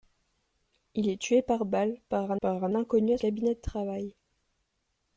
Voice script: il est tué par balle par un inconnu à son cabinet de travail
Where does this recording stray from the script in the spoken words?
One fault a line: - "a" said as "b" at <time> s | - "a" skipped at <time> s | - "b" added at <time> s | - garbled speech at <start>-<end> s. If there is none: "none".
- "par un" added at 2.4 s
- "son" skipped at 3.2 s